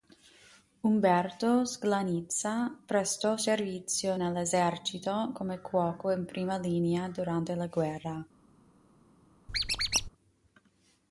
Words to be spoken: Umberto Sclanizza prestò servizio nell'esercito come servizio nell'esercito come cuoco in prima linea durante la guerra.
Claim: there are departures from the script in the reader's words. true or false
true